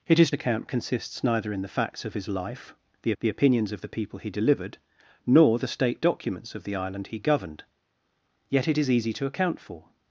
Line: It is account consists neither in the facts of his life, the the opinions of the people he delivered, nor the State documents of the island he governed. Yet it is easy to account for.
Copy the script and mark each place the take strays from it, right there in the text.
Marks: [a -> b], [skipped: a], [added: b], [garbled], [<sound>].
It is account consists neither in the facts of his life, the the opinions of the people he delivered, nor the State documents of the island he governed. Yet it is easy to account for.